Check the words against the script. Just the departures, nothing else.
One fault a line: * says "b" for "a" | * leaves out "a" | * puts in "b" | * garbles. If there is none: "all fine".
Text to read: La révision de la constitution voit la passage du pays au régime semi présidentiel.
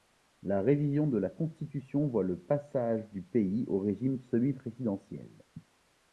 * says "le" for "la"